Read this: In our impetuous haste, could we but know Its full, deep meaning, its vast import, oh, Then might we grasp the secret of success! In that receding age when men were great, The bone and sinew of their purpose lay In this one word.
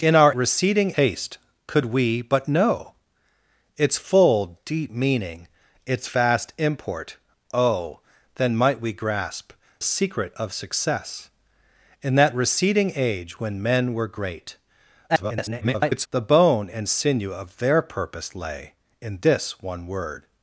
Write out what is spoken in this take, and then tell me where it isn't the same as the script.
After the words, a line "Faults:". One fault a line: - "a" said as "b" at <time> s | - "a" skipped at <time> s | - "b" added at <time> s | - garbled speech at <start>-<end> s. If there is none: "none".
In our receding haste, could we but know Its full, deep meaning, its vast import, oh, Then might we grasp secret of success! In that receding age when men were great, [garbled] The bone and sinew of their purpose lay In this one word.
Faults:
- "impetuous" said as "receding" at 0.3 s
- "the" skipped at 9.5 s
- garbled speech at 15.1-16.1 s